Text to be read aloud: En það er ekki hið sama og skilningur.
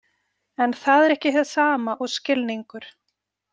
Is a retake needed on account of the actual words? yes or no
no